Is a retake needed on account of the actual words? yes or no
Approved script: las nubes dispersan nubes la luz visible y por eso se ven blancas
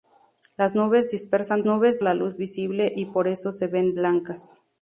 no